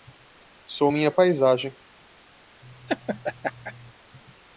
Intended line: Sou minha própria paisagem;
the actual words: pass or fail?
fail